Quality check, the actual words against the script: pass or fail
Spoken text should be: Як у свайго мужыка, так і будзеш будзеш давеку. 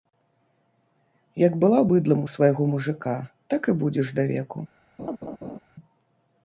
fail